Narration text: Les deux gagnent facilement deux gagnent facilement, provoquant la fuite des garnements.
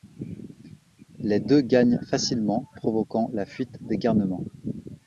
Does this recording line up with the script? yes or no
no